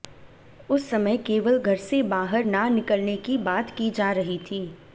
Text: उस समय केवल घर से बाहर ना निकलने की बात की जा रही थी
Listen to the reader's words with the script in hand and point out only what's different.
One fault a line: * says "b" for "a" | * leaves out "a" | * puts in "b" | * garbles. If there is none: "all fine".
all fine